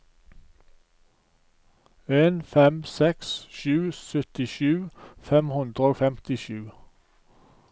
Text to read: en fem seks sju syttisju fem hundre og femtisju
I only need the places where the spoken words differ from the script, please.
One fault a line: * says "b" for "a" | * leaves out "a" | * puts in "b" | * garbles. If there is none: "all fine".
all fine